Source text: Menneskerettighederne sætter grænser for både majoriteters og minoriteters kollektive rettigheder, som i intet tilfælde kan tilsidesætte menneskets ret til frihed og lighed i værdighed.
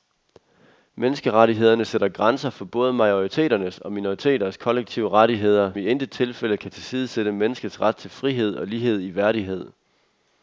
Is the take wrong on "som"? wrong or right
wrong